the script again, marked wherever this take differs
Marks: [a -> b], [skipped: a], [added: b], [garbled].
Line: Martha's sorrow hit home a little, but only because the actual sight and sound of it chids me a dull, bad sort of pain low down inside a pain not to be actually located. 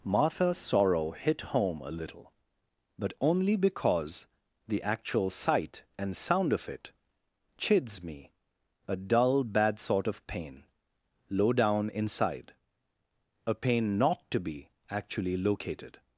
Martha's sorrow hit home a little, but only because the actual sight and sound of it chids me a dull, bad sort of pain low down inside a pain not to be actually located.